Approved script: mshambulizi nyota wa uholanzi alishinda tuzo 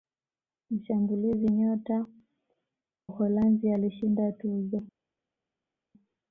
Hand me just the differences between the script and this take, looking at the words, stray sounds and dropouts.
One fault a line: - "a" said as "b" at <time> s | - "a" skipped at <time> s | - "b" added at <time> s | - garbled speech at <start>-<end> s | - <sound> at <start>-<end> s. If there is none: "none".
- "wa" skipped at 2.1 s